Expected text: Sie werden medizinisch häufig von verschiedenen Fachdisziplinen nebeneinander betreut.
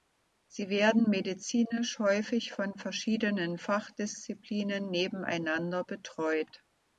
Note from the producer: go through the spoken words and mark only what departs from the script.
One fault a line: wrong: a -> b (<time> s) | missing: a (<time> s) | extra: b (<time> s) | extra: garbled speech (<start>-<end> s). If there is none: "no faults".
no faults